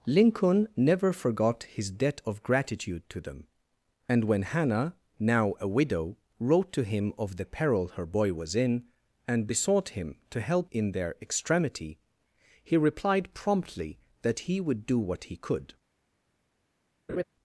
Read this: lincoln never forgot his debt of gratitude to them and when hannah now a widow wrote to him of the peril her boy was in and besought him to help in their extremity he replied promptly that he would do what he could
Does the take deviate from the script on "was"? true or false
false